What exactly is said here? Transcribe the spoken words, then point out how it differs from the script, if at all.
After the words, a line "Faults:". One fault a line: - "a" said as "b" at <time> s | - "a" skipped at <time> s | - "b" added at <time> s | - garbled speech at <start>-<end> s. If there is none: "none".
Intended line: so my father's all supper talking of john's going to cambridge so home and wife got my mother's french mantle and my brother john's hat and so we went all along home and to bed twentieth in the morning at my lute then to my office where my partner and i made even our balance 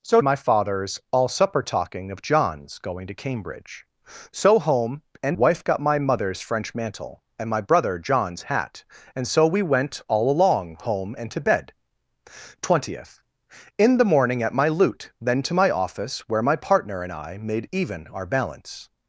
so my father's all supper talking of john's going to cambridge so home and wife got my mother's french mantle and my brother john's hat and so we went all along home and to bed twentieth in the morning at my lute then to my office where my partner and i made even our balance
Faults:
none